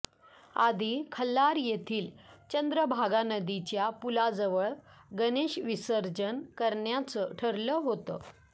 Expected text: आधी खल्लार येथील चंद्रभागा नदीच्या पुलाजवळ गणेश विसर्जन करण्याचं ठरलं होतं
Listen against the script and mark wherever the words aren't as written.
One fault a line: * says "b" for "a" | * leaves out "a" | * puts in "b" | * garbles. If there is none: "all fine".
all fine